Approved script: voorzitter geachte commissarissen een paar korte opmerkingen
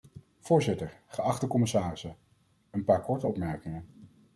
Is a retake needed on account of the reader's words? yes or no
no